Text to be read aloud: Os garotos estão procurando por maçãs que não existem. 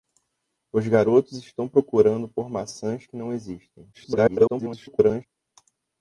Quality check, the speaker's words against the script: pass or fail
fail